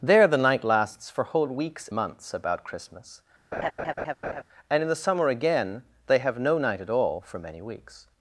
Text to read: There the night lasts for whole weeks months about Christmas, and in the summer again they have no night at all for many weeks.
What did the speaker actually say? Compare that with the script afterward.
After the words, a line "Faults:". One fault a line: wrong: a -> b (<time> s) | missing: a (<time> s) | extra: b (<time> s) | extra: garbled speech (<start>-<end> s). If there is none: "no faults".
There the night lasts for whole weeks months about Christmas, and in the summer again they have no night at all for many weeks.
Faults:
no faults